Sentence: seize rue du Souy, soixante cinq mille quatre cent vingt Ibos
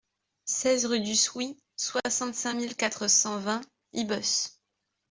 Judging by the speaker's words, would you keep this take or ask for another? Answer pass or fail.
pass